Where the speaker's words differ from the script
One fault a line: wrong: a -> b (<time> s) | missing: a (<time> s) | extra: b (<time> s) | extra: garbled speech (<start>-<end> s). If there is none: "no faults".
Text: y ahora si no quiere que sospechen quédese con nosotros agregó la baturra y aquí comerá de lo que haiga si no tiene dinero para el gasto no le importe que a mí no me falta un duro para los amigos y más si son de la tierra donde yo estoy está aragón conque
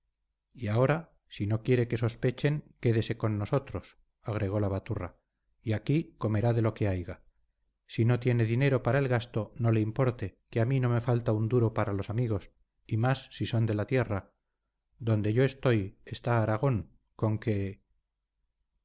no faults